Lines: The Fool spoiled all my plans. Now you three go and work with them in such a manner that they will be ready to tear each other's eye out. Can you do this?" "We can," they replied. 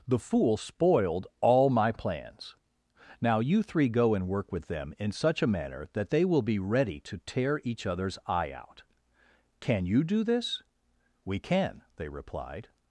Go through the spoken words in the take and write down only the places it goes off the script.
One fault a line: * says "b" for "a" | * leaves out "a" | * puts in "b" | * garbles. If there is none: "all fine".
all fine